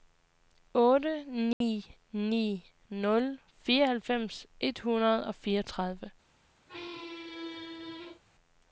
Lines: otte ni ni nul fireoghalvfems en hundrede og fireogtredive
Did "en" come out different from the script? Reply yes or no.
yes